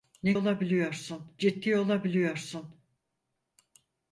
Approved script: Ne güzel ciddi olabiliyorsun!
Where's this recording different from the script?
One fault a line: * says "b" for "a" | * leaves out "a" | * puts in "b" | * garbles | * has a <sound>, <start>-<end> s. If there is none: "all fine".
* says "olabiliyorsun" for "güzel"